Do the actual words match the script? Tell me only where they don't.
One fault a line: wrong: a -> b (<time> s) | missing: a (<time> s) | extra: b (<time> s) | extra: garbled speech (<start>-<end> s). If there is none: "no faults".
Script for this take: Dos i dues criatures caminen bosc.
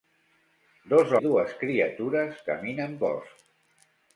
no faults